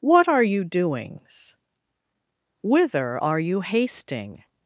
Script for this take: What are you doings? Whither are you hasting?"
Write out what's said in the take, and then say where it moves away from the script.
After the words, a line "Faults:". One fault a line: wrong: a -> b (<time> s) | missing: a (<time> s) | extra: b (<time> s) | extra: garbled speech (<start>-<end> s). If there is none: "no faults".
What are you doings? Whither are you hasting?"
Faults:
no faults